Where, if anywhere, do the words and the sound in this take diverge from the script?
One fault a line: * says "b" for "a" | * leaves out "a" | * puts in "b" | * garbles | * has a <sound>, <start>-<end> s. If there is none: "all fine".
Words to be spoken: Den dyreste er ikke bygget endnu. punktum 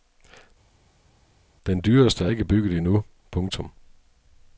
all fine